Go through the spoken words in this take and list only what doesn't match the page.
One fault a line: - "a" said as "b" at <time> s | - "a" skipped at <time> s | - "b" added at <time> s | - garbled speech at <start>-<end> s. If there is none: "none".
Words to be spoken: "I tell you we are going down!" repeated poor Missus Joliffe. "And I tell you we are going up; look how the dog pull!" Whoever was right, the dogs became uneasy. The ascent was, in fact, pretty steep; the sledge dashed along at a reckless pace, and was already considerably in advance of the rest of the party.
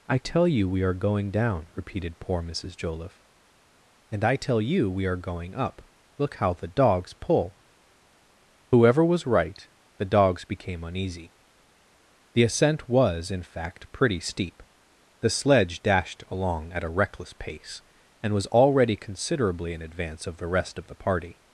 - "dog" said as "dogs" at 6.7 s